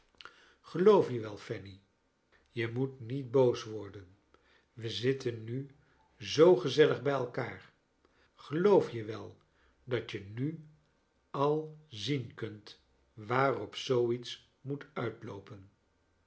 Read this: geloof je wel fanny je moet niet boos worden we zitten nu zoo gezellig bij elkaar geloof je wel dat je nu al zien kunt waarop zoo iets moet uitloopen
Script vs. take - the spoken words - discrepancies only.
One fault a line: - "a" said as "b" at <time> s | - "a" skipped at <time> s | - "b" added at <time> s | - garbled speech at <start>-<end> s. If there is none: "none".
none